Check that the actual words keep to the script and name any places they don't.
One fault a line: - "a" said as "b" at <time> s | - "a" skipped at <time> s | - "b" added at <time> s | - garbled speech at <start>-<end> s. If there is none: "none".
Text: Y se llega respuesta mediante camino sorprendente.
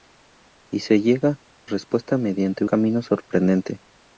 none